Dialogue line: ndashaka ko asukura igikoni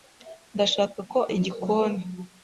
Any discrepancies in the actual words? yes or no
yes